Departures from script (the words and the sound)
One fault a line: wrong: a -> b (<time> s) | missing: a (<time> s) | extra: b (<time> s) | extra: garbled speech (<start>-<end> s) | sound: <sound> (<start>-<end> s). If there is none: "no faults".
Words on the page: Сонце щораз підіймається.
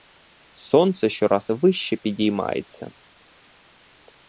extra: вище (1.5 s)